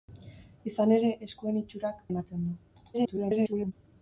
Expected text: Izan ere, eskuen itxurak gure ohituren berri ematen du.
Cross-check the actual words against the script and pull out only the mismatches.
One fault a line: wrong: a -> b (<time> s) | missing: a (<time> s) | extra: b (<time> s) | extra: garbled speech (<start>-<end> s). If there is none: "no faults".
missing: gure ohituren berri (2.0 s)
extra: garbled speech (2.9-3.7 s)